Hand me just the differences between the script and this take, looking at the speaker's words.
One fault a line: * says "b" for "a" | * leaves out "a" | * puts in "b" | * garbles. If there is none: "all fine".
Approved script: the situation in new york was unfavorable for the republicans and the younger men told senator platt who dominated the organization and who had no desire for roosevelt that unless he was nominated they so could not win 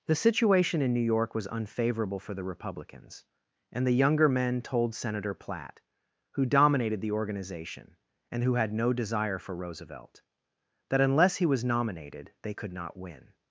* leaves out "so"